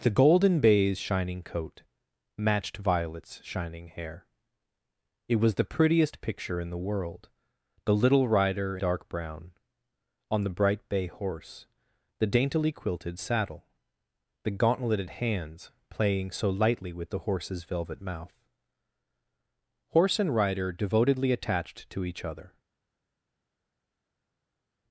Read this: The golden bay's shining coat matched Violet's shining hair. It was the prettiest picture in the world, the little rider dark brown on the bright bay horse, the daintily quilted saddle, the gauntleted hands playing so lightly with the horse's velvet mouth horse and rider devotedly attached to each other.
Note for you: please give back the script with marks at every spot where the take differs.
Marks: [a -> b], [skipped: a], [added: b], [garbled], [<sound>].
The golden bay's shining coat matched Violet's shining hair. It was the prettiest picture in the world, the little rider dark brown on the bright bay horse, the daintily quilted saddle, the gauntleted hands playing so lightly with the horse's velvet mouth horse and rider devotedly attached to each other.